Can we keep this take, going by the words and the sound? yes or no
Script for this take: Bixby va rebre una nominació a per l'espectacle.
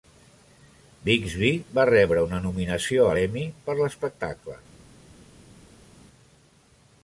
no